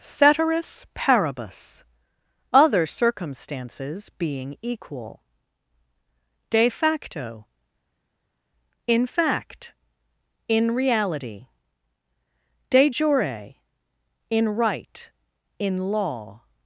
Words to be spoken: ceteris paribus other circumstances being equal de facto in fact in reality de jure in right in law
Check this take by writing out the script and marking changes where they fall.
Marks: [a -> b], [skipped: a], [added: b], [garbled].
ceteris paribus other circumstances being equal de facto in fact in reality de jure in right in law